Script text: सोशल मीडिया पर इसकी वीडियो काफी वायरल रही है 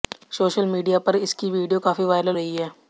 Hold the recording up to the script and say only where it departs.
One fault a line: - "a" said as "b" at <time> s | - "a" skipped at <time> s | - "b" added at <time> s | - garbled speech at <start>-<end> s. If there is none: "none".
none